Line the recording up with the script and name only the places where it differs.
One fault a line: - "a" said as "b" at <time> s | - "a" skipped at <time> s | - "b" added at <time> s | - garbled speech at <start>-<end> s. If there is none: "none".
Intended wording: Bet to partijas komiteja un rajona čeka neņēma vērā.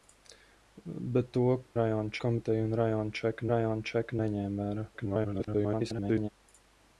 - "partijas" said as "rajona" at 1.8 s
- "rajona čeka" added at 3.5 s
- garbled speech at 4.9-6.3 s